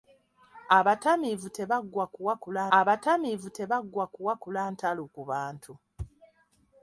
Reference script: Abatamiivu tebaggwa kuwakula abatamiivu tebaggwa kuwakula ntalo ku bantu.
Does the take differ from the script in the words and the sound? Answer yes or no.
no